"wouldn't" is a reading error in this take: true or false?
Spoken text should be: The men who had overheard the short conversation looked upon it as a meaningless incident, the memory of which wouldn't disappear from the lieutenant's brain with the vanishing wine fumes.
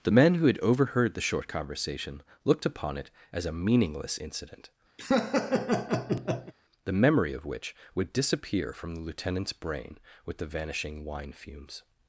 true